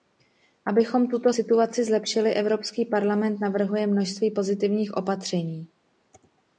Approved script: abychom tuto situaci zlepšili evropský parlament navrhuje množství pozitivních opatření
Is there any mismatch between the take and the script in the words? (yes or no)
no